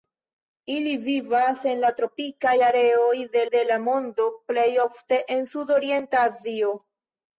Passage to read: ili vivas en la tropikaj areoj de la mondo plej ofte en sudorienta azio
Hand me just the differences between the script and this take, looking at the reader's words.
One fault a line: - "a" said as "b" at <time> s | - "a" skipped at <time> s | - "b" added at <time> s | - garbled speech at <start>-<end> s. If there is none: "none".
- "de" added at 3.6 s